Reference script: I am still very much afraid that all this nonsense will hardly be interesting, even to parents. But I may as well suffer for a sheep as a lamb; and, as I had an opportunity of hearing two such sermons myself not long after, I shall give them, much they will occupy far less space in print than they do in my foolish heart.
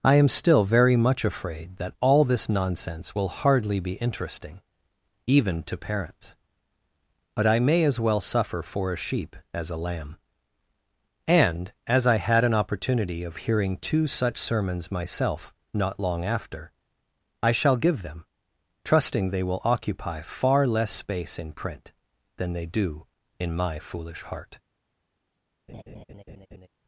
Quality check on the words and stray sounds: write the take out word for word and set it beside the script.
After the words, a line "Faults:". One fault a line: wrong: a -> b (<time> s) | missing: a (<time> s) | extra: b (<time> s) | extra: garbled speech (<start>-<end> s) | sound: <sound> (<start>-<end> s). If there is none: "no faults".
I am still very much afraid that all this nonsense will hardly be interesting, even to parents. But I may as well suffer for a sheep as a lamb; and, as I had an opportunity of hearing two such sermons myself not long after, I shall give them, trusting they will occupy far less space in print than they do in my foolish heart.
Faults:
wrong: much -> trusting (18.8 s)
sound: laugh (25.7-26.7 s)